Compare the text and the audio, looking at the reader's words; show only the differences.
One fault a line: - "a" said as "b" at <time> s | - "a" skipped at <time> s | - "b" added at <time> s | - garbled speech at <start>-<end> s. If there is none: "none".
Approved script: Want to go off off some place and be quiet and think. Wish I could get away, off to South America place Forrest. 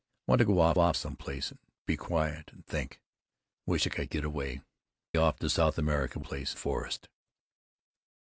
none